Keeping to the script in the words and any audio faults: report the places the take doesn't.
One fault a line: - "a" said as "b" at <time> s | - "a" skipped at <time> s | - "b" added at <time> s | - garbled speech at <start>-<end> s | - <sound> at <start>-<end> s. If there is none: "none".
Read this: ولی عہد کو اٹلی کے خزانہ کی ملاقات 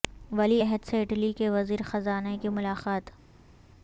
- "کو" said as "سے" at 0.8 s
- "وزیر" added at 1.5 s